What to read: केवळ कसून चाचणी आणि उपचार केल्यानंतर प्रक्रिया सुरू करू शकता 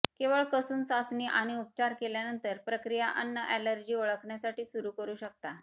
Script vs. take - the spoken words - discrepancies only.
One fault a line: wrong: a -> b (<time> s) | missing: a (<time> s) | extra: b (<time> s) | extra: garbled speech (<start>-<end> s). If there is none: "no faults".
extra: अन्न ऍलर्जी ओळखण्यासाठी (3.2 s)